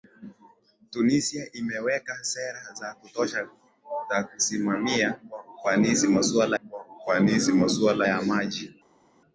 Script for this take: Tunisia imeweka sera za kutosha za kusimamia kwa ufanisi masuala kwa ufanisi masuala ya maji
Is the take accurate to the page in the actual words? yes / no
yes